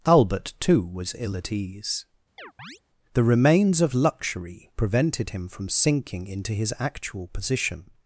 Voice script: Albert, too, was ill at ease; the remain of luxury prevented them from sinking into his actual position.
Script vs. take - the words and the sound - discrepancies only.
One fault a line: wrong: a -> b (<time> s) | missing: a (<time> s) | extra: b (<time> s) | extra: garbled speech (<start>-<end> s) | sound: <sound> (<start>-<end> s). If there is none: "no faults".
sound: chirp (2.4-2.8 s)
wrong: remain -> remains (3.2 s)
wrong: them -> him (5.3 s)